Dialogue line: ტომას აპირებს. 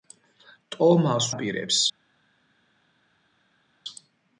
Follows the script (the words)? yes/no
yes